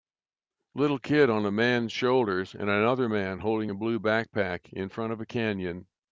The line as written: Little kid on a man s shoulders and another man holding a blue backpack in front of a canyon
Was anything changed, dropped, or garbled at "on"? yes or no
no